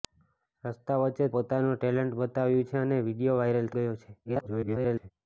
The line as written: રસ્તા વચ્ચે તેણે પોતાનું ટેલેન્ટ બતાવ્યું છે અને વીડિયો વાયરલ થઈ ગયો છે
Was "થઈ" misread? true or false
true